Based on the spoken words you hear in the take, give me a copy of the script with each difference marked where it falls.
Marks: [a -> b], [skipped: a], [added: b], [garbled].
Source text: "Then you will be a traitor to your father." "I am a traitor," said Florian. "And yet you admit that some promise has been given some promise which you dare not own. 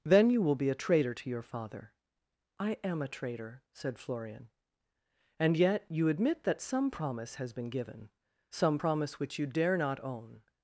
"Then you will be a traitor to your father." "I am a traitor," said Florian. "And yet you admit that some promise has been given some promise which you dare not own.